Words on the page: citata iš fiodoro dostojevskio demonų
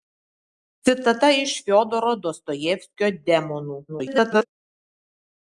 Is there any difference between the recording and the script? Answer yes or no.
yes